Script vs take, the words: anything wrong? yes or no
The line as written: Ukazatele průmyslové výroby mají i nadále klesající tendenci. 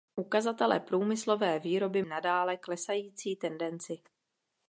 yes